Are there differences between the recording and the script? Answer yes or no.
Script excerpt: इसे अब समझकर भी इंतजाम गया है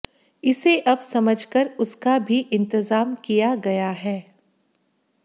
yes